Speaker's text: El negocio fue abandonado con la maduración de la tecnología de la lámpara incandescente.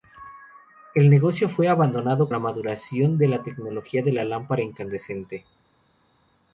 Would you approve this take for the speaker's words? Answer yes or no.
no